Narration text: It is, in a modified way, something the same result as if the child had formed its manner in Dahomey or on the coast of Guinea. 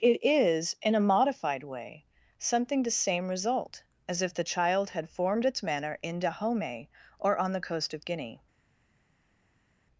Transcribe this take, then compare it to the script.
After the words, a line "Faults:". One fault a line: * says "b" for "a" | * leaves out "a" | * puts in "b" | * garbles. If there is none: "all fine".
It is, in a modified way, something the same result as if the child had formed its manner in Dahomey or on the coast of Guinea.
Faults:
all fine